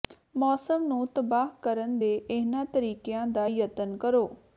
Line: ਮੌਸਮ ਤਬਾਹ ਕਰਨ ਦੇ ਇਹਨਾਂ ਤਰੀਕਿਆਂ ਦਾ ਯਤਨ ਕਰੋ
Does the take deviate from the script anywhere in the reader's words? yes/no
yes